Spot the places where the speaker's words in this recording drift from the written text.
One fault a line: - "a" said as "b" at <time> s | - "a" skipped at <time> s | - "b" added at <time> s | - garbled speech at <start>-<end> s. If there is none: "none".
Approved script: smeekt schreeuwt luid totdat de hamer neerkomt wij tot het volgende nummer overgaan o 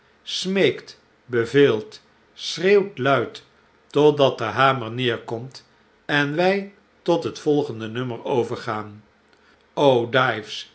- "beveelt" added at 1.2 s
- "en" added at 6.1 s